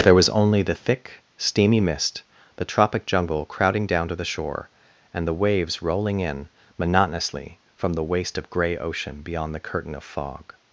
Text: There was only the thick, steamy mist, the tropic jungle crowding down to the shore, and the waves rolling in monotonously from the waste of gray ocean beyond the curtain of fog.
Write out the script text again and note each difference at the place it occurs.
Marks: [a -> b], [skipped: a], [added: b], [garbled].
There was only the thick, steamy mist, the tropic jungle crowding down to the shore, and the waves rolling in monotonously from the waste of gray ocean beyond the curtain of fog.